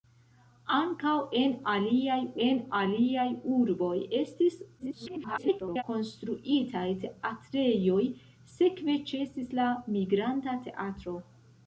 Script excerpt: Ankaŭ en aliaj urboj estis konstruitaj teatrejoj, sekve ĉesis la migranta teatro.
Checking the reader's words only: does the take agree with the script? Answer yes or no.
no